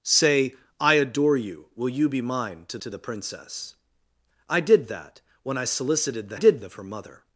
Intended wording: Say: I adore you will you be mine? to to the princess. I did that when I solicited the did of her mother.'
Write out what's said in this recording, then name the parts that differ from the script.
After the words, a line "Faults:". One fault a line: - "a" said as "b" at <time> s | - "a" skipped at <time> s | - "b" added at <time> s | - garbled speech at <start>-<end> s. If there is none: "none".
Say: I adore you will you be mine? to to the princess. I did that when I solicited the did of her mother.'
Faults:
none